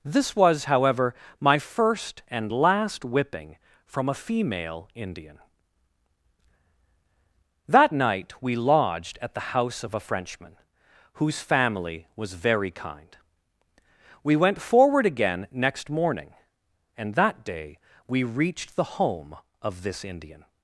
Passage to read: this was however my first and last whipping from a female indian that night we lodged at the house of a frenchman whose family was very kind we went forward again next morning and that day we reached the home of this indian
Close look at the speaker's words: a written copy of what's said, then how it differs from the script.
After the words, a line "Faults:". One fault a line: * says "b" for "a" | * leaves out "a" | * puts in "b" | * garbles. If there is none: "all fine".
this was however my first and last whipping from a female indian that night we lodged at the house of a frenchman whose family was very kind we went forward again next morning and that day we reached the home of this indian
Faults:
all fine